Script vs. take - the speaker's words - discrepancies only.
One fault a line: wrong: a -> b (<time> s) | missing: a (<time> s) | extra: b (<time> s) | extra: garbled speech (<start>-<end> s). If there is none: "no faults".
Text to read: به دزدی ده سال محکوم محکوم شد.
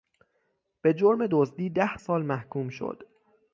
extra: جرم (0.9 s)
missing: محکوم (2.7 s)